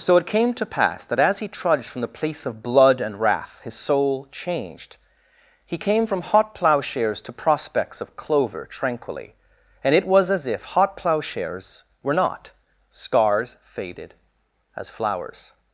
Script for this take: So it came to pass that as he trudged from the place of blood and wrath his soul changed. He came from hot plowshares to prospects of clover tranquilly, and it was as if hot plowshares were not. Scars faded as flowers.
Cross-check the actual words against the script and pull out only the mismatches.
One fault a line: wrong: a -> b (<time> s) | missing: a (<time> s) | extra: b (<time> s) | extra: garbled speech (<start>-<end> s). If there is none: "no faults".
no faults